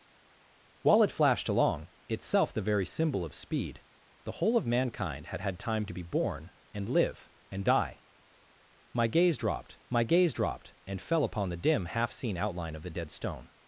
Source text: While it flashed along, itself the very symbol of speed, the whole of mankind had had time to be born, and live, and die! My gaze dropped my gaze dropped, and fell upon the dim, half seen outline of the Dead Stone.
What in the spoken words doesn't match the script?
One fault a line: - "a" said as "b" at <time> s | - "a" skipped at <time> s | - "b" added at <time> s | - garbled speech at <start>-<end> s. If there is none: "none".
none